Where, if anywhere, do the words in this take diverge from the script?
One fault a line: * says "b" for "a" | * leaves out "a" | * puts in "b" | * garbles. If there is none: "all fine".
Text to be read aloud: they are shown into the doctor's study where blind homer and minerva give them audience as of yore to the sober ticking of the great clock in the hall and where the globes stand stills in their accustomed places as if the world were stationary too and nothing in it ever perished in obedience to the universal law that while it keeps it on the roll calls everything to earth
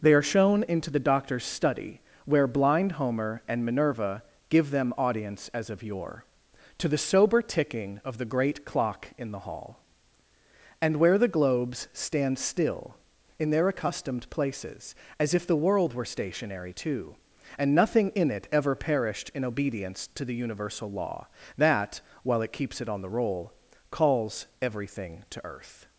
* says "still" for "stills"